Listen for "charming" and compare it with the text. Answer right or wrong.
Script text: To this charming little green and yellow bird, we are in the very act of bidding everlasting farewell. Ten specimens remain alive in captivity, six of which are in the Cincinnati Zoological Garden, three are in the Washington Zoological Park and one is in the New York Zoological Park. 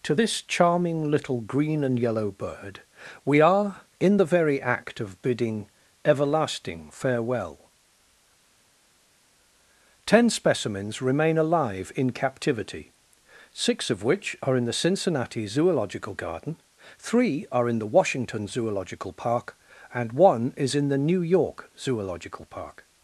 right